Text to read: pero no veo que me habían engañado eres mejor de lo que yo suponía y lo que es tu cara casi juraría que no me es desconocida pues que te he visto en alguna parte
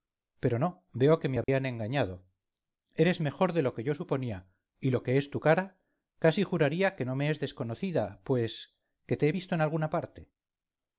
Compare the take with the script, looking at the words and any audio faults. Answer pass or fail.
fail